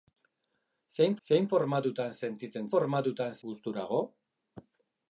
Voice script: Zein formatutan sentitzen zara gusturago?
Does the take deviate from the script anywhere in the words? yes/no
yes